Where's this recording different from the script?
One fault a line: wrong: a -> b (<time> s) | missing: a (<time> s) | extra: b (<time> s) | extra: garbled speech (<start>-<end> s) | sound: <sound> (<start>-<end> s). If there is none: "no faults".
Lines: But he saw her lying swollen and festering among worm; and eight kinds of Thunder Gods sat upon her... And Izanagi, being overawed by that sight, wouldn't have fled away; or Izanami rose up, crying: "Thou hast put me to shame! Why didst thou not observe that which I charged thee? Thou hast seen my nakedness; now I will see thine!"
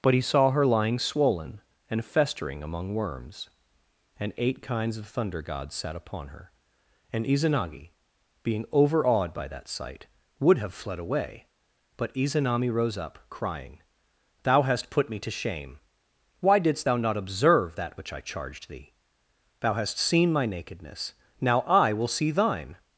wrong: worm -> worms (3.0 s)
wrong: wouldn't -> would (10.4 s)
wrong: or -> but (12.0 s)